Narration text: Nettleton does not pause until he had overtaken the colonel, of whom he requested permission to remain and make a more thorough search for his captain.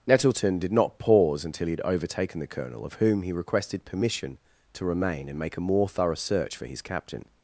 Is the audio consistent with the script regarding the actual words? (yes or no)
no